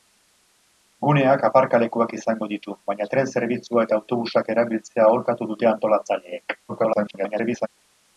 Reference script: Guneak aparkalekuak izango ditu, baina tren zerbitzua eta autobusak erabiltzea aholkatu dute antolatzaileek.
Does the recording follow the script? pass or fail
fail